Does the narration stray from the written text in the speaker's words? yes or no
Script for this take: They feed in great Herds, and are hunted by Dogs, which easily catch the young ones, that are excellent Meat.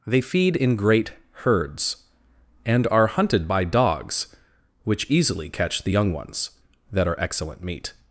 no